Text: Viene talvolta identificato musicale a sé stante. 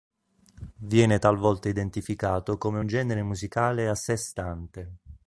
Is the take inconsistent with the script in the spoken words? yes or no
yes